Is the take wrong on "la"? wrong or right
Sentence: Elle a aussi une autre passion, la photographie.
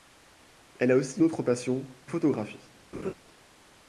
wrong